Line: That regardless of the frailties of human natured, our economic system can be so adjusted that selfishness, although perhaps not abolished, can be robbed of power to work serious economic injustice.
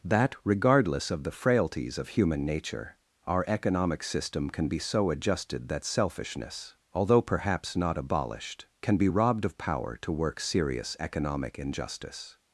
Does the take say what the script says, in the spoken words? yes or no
no